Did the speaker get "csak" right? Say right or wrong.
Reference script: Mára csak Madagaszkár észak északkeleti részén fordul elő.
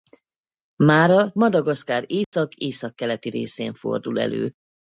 wrong